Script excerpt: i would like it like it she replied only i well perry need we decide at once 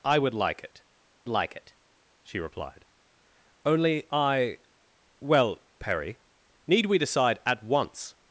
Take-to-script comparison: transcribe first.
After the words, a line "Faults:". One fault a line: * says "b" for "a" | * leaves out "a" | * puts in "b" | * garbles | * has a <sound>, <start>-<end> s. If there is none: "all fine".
i would like it like it she replied only i well perry need we decide at once
Faults:
all fine